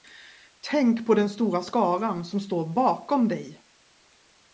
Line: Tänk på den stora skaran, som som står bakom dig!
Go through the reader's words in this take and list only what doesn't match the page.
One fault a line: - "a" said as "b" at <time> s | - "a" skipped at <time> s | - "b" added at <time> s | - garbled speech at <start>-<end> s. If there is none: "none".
- "som" skipped at 2.4 s